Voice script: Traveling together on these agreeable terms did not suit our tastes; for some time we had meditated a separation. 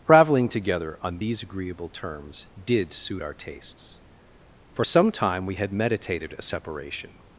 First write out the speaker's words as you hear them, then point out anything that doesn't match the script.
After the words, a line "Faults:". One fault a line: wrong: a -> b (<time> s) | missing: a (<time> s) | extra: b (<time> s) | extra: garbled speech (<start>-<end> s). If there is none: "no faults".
Traveling together on these agreeable terms did suit our tastes; for some time we had meditated a separation.
Faults:
missing: not (2.9 s)